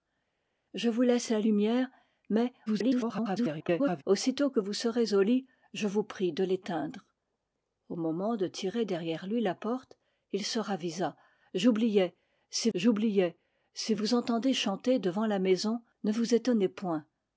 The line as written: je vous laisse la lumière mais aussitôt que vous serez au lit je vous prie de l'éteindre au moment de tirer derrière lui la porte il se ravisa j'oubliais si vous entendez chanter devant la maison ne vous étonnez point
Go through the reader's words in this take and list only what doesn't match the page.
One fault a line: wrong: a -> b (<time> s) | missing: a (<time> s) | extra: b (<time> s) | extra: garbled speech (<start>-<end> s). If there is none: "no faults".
extra: garbled speech (2.7-4.0 s)
extra: j'oubliais si (12.7 s)